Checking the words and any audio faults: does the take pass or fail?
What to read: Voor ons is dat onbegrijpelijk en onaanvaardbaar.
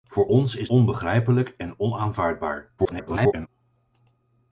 fail